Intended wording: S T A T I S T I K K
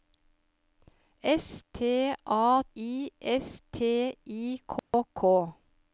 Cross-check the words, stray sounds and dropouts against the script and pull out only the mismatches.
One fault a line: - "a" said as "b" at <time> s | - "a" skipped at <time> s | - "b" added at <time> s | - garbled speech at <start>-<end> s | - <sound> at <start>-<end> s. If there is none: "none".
- "T" skipped at 2.6 s
- dropout at 4.8-4.9 s